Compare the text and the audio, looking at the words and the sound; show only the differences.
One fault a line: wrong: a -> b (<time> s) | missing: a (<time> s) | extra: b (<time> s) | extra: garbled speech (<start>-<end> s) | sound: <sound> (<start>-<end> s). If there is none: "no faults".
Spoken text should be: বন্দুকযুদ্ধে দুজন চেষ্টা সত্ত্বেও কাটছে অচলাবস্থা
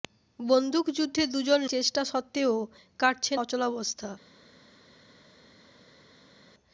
no faults